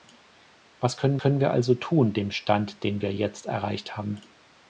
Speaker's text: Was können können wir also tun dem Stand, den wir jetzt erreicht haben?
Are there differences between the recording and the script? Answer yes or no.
no